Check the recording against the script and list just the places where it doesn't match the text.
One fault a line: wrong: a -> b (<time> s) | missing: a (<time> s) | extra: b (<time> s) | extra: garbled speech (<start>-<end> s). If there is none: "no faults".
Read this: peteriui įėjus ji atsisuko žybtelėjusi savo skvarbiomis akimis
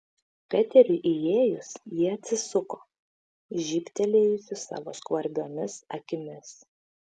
no faults